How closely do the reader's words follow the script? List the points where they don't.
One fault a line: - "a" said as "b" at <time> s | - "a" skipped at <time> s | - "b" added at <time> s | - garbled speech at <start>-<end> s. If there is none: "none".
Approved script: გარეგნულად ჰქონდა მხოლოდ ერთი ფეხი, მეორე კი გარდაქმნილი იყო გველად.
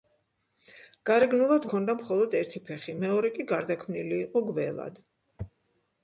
none